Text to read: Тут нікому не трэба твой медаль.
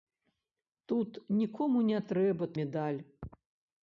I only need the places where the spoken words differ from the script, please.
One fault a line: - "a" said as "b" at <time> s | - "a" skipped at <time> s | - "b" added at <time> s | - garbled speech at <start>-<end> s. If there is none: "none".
- "твой" skipped at 2.5 s